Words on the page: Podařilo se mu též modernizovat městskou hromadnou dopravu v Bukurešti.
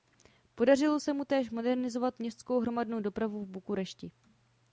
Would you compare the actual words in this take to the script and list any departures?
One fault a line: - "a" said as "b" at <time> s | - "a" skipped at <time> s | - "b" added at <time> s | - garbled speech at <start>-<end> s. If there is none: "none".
none